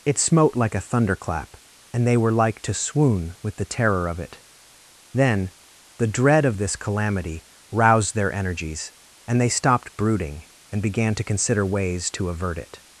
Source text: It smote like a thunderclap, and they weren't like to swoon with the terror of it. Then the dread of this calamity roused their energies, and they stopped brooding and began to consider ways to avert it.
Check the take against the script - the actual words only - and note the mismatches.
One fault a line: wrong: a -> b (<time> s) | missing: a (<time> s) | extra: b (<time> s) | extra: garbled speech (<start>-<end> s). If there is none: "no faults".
wrong: weren't -> were (2.2 s)